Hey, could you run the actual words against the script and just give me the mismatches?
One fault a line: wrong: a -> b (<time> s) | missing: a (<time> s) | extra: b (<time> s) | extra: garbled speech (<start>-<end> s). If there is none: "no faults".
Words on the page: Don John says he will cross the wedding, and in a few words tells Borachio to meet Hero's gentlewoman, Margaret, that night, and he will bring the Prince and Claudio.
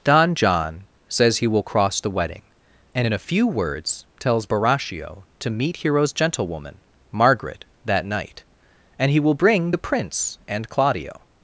no faults